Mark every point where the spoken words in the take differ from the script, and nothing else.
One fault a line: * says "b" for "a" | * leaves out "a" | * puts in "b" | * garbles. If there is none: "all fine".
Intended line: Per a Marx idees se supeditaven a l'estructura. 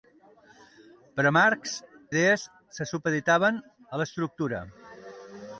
all fine